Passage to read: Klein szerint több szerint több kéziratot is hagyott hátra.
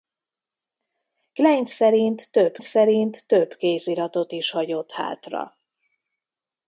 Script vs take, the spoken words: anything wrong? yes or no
no